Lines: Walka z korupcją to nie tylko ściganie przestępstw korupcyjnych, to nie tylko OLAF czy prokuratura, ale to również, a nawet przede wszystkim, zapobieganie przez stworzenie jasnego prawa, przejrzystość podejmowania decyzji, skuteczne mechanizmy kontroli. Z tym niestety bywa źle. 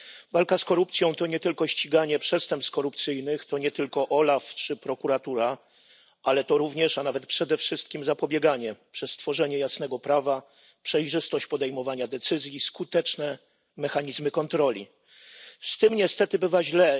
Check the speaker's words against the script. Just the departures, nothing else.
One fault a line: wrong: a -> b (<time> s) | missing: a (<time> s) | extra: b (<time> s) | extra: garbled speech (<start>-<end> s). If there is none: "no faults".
no faults